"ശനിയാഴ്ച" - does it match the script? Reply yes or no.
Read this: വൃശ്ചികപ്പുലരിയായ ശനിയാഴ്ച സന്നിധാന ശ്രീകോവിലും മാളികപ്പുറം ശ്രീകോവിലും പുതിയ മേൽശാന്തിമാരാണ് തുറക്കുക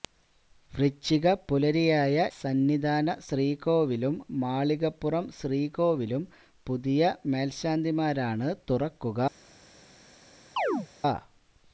no